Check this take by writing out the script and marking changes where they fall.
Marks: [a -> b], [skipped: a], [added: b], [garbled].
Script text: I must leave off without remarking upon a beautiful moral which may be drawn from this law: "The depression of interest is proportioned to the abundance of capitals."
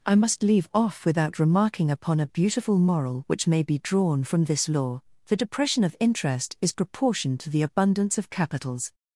I must leave off without remarking upon a beautiful moral which may be drawn from this law: "The depression of interest is proportioned to the abundance of capitals."